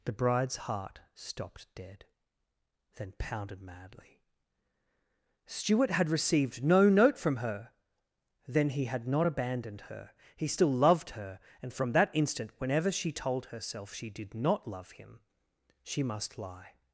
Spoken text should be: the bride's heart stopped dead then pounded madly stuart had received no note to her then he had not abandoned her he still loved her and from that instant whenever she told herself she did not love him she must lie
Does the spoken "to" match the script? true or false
false